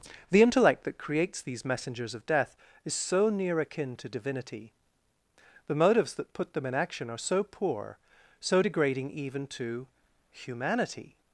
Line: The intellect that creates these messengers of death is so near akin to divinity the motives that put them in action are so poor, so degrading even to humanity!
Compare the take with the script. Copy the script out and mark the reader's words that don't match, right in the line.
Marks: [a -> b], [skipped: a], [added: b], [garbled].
The intellect that creates these messengers of death is so near akin to divinity the motives that put them in action are so poor, so degrading even to humanity!